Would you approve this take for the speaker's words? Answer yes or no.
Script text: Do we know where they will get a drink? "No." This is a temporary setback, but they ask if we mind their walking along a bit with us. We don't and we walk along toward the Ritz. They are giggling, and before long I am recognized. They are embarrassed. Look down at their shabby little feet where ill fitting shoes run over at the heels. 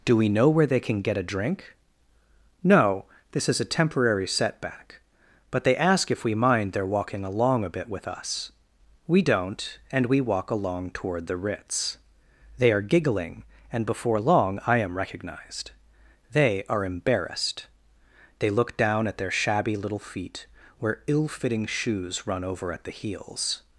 no